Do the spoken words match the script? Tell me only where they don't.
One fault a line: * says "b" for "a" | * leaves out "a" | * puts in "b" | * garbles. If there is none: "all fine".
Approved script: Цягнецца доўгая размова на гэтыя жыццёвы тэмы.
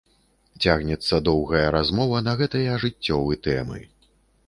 all fine